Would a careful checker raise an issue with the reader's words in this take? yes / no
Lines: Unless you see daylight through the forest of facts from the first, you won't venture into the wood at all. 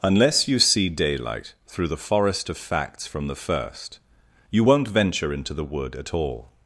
no